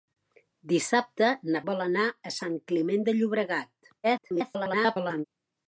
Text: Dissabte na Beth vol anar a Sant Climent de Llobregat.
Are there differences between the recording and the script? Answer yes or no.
yes